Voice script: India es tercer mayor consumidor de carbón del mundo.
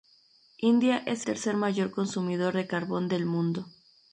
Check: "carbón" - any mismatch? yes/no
no